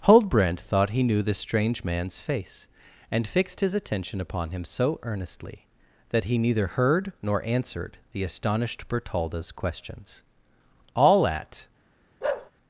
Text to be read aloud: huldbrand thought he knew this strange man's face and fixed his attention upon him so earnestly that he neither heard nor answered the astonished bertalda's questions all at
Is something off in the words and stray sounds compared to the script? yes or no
yes